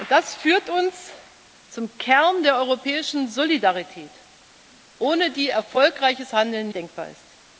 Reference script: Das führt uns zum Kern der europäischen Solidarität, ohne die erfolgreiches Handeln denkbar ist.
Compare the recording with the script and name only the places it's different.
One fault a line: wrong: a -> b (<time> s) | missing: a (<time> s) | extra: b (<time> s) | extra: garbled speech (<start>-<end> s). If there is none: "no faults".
no faults